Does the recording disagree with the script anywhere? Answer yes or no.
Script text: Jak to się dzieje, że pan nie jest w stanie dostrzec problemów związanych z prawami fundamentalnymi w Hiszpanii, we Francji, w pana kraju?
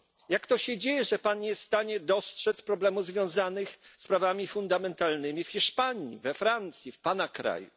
no